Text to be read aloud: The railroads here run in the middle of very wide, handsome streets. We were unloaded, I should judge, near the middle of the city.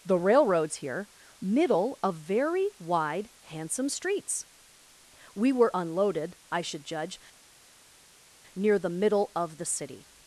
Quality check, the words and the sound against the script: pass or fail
fail